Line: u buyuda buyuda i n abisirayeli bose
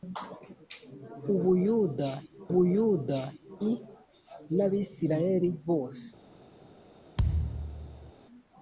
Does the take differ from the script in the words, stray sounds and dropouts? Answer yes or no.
yes